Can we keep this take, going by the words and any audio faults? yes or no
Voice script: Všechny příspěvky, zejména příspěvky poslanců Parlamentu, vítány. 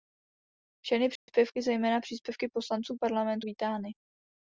no